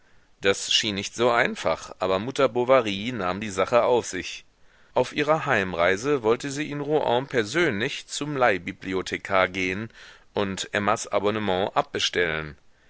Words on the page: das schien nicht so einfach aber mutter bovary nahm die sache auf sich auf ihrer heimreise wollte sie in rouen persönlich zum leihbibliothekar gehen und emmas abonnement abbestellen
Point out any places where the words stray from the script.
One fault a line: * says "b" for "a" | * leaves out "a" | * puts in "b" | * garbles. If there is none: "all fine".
all fine